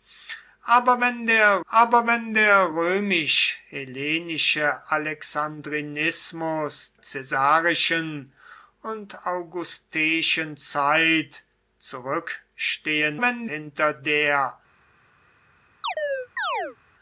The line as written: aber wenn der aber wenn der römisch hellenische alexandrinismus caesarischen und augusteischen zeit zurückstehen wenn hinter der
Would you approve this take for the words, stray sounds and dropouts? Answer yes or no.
no